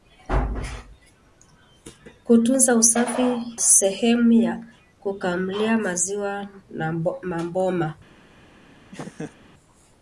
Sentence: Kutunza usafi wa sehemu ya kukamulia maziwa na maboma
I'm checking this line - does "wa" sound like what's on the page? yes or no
no